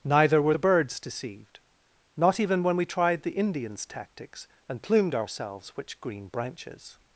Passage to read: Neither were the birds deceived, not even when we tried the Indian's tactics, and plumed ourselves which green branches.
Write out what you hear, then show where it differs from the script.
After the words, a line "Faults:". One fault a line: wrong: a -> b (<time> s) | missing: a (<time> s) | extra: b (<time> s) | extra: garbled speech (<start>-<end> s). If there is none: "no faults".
Neither were the birds deceived, not even when we tried the Indian's tactics, and plumed ourselves which green branches.
Faults:
no faults